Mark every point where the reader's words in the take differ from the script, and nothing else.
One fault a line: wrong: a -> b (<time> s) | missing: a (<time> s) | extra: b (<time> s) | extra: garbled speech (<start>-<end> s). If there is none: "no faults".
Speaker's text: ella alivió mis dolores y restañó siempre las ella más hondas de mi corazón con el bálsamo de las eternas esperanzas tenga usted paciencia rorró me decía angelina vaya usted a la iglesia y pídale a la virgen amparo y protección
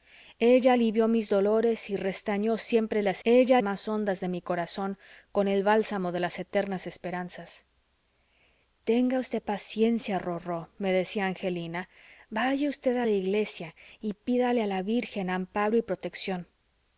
no faults